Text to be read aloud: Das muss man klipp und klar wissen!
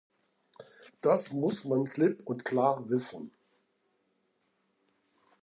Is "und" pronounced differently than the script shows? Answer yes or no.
no